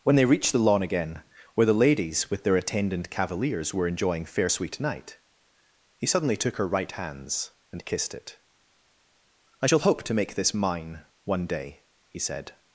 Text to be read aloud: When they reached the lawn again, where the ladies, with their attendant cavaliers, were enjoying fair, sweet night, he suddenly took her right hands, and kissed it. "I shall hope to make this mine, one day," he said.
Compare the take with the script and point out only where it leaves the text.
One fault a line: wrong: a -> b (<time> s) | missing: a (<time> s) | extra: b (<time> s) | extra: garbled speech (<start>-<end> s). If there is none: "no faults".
no faults